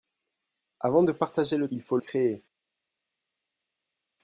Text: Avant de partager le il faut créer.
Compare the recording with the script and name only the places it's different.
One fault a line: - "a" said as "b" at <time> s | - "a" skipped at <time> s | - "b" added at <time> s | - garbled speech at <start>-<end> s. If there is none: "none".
none